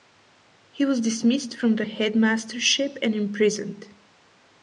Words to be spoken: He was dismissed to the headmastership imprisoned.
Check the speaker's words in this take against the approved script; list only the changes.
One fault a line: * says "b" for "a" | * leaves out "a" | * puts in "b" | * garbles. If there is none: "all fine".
* says "from" for "to"
* puts in "and"